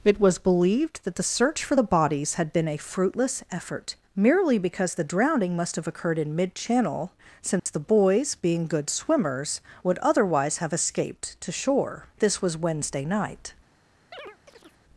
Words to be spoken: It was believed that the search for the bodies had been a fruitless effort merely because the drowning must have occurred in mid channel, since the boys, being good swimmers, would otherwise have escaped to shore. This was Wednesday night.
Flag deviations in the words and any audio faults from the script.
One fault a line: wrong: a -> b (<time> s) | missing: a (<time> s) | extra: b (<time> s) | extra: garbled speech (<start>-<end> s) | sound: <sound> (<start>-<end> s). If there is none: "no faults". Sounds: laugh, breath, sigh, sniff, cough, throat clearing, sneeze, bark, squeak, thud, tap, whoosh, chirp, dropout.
sound: dropout (7.6-7.7 s)
sound: chirp (14.1-14.8 s)